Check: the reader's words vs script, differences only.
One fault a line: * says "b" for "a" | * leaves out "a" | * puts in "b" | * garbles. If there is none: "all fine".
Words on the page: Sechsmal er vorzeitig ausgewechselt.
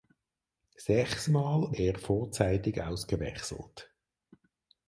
all fine